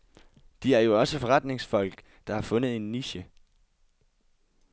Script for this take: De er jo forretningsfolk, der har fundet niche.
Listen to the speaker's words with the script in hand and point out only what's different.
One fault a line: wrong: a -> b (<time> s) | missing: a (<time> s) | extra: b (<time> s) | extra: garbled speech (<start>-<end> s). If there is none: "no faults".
extra: også (1.0 s)
extra: en (2.7 s)